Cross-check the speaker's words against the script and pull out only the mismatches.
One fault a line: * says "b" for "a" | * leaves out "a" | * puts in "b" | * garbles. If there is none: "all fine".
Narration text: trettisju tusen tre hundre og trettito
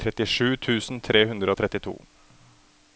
all fine